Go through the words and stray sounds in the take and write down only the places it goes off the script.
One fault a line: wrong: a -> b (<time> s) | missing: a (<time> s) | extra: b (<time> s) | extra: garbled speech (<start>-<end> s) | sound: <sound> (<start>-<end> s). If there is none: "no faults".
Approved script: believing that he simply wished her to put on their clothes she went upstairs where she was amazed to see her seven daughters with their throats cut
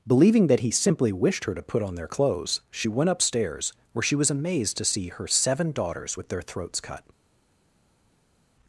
no faults